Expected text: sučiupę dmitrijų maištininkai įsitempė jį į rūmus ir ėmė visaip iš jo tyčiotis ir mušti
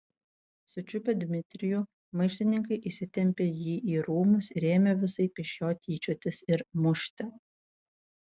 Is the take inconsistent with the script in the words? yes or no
no